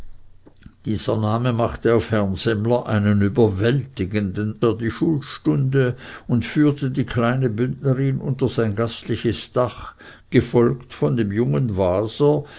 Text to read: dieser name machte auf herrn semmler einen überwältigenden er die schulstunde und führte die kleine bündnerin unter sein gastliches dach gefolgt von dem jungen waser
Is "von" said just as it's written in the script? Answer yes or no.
yes